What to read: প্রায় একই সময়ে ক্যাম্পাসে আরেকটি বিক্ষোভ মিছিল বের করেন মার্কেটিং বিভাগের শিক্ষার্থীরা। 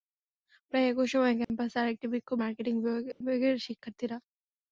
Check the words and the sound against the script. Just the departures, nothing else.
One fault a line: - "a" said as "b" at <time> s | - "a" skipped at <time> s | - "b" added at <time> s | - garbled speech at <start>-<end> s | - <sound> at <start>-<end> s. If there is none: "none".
- dropout at 1.4-1.5 s
- "মিছিল বের করেন" skipped at 2.4 s
- dropout at 3.1-3.2 s